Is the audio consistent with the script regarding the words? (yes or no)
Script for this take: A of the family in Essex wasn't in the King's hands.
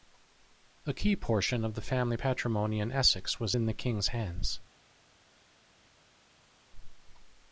no